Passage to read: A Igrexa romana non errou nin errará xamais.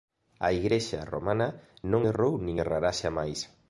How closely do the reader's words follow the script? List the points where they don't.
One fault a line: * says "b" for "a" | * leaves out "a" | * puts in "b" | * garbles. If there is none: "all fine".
all fine